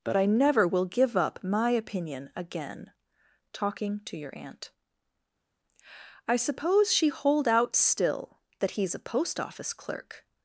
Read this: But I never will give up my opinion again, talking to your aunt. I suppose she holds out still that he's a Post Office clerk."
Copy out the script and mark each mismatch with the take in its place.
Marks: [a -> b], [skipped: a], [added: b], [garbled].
But I never will give up my opinion again, talking to your aunt. I suppose she [holds -> hold] out still that he's a Post Office clerk."